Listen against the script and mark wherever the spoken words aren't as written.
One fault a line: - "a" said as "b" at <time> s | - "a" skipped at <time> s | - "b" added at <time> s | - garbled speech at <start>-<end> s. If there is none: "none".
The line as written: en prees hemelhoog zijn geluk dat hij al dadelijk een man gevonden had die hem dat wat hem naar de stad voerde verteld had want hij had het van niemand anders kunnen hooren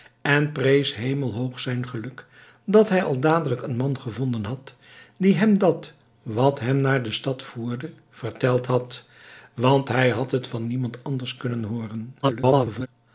- garbled speech at 12.2-12.9 s